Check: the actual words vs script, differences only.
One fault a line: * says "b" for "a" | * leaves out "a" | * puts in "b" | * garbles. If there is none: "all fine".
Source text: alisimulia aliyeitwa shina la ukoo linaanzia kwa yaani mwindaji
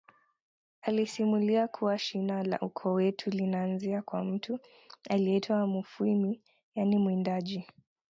* says "kuwa" for "aliyeitwa"
* puts in "wetu"
* puts in "mtu aliyeitwa mufwimi"